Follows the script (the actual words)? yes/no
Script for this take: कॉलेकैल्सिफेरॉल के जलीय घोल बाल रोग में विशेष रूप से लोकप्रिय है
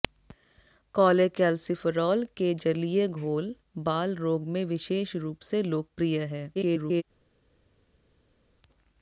no